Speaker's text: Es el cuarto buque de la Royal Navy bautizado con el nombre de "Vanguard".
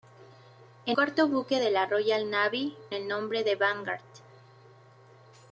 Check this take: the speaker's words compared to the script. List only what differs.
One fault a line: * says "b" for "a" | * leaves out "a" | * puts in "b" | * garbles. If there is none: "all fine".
* leaves out "el"
* leaves out "bautizado con"